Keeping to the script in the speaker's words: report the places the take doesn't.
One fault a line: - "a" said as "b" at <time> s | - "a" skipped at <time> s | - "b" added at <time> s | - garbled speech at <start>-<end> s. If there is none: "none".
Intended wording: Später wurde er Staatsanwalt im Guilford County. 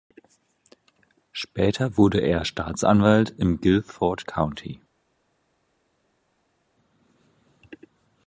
none